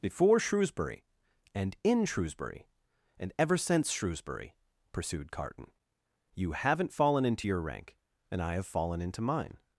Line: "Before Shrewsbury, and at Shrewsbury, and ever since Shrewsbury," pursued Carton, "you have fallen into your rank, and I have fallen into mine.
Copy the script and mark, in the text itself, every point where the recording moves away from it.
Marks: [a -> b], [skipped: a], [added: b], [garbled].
"Before Shrewsbury, and [at -> in] Shrewsbury, and ever since Shrewsbury," pursued Carton, "you [have -> haven't] fallen into your rank, and I have fallen into mine.